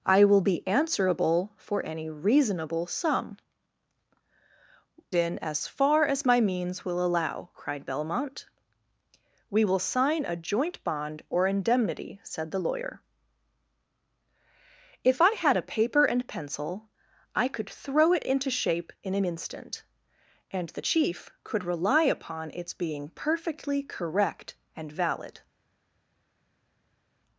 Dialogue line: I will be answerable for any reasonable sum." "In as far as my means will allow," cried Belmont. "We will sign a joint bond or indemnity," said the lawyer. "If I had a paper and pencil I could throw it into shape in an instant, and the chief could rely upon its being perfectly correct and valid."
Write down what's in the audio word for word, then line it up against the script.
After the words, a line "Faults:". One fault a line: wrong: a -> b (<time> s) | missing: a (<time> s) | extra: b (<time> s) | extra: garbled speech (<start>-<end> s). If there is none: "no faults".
I will be answerable for any reasonable sum." "In as far as my means will allow," cried Belmont. "We will sign a joint bond or indemnity," said the lawyer. "If I had a paper and pencil I could throw it into shape in an instant, and the chief could rely upon its being perfectly correct and valid."
Faults:
no faults